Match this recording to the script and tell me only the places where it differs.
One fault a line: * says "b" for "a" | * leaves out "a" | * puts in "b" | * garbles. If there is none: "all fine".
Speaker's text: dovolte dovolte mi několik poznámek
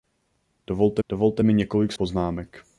all fine